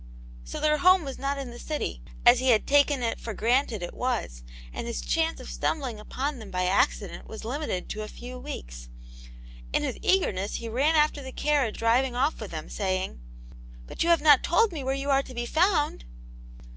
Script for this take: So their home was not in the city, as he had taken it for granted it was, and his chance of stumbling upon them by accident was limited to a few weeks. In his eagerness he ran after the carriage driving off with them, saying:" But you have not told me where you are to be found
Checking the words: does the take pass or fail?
pass